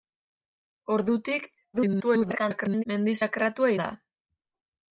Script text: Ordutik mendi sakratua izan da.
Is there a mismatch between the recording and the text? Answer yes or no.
yes